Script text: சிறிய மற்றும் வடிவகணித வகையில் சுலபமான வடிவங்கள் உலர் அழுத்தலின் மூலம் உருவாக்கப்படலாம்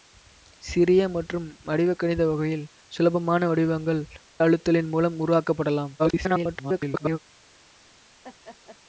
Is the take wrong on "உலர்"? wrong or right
wrong